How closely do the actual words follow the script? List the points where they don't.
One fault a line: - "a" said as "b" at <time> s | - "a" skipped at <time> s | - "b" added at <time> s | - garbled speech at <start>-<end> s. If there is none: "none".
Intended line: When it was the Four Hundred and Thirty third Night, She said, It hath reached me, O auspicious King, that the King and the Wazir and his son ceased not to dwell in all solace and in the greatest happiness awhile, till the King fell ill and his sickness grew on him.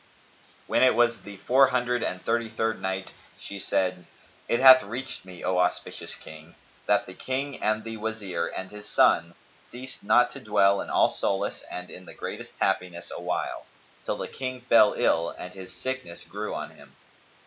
none